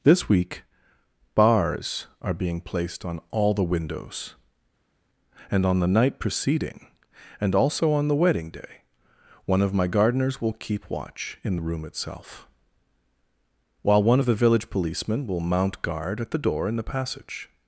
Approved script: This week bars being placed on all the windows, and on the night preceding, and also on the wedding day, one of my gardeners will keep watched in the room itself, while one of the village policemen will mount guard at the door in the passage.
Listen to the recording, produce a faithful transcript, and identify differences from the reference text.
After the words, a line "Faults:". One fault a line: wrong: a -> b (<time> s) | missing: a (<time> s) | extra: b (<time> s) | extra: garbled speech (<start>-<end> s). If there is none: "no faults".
This week bars are being placed on all the windows, and on the night preceding, and also on the wedding day, one of my gardeners will keep watch in the room itself, while one of the village policemen will mount guard at the door in the passage.
Faults:
extra: are (2.2 s)
wrong: watched -> watch (10.9 s)